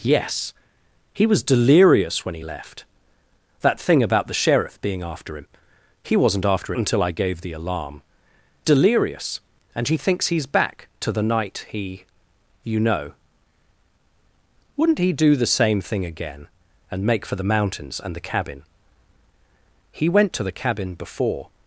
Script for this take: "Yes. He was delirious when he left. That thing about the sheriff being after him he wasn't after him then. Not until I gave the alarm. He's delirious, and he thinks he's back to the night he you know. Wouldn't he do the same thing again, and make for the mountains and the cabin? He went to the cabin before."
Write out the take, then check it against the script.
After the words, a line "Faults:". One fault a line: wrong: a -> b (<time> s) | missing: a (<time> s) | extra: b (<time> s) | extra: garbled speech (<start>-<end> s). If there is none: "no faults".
"Yes. He was delirious when he left. That thing about the sheriff being after him he wasn't after until I gave the alarm. Delirious, and he thinks he's back to the night he you know. Wouldn't he do the same thing again, and make for the mountains and the cabin? He went to the cabin before."
Faults:
missing: him then Not (6.7 s)
missing: He's (8.0 s)